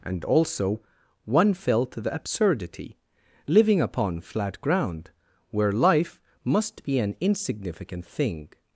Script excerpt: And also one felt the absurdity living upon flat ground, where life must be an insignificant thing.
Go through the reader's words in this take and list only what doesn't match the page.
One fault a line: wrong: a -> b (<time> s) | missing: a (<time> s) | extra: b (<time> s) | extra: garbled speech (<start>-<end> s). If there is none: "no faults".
no faults